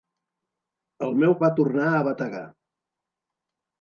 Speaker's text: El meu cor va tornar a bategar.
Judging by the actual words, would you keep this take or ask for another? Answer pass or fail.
fail